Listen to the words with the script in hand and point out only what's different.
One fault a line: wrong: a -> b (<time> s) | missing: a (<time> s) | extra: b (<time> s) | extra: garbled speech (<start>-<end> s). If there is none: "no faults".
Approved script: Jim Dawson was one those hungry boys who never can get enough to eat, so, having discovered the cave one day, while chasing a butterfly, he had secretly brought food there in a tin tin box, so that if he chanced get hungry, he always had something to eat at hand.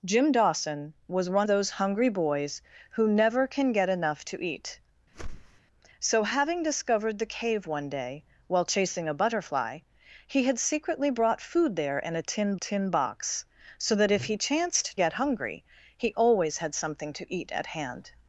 no faults